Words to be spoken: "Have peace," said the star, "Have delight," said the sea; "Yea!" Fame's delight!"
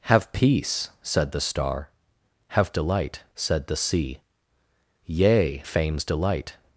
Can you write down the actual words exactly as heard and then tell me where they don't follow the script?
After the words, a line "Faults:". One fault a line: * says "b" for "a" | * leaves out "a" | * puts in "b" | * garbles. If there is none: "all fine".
"Have peace," said the star, "Have delight," said the sea; "Yea!" Fame's delight!"
Faults:
all fine